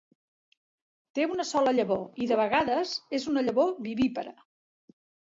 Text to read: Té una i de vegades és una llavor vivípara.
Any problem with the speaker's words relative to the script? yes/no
yes